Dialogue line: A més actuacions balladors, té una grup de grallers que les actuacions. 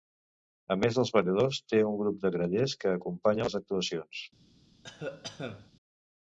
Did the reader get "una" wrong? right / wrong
wrong